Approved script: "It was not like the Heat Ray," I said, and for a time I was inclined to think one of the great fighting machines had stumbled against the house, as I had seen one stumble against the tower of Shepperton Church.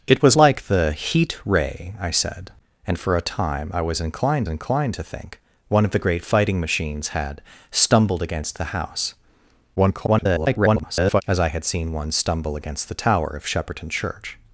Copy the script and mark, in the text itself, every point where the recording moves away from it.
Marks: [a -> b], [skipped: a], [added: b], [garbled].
"It was [skipped: not] like the Heat Ray," I said, and for a time I was inclined [added: inclined] to think one of the great fighting machines had stumbled against the house, [garbled] as I had seen one stumble against the tower of Shepperton Church.